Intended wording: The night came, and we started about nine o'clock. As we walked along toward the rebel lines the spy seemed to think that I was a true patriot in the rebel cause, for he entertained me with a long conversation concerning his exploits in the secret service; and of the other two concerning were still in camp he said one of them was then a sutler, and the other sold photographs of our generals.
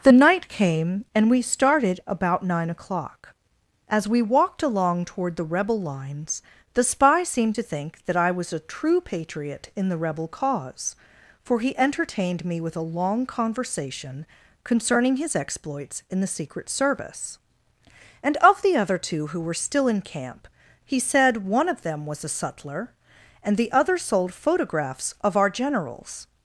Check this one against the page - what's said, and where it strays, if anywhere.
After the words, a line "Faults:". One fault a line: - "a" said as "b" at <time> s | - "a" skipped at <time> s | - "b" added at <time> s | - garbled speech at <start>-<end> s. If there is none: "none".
The night came, and we started about nine o'clock. As we walked along toward the rebel lines the spy seemed to think that I was a true patriot in the rebel cause, for he entertained me with a long conversation concerning his exploits in the secret service; and of the other two who were still in camp he said one of them was a sutler, and the other sold photographs of our generals.
Faults:
- "concerning" said as "who" at 19.3 s
- "then" skipped at 22.2 s